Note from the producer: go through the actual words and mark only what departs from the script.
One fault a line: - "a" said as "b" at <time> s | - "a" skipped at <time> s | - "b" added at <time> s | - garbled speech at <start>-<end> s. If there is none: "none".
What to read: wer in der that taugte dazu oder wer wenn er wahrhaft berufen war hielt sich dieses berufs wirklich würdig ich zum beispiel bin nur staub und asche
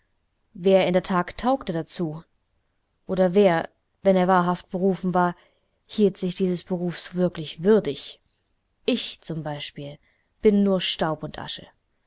none